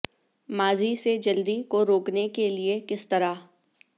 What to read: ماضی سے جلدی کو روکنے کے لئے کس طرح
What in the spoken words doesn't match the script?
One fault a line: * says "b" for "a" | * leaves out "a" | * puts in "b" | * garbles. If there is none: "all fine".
all fine